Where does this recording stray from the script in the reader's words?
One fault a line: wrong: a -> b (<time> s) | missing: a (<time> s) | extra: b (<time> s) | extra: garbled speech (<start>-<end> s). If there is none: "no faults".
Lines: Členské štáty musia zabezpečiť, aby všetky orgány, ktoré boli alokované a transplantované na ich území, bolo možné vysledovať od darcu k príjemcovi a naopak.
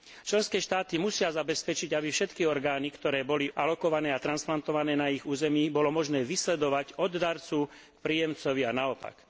no faults